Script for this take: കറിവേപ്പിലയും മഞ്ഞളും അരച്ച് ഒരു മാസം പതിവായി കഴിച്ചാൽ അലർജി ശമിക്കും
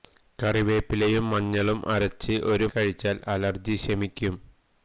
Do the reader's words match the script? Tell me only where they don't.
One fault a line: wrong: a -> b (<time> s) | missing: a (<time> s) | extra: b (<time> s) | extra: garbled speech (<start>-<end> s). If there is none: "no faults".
missing: മാസം പതിവായി (2.7 s)